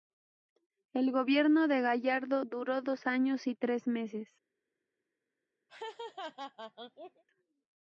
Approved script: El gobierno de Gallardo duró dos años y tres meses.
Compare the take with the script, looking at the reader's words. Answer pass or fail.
pass